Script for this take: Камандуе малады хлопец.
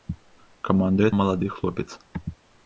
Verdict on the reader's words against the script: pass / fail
pass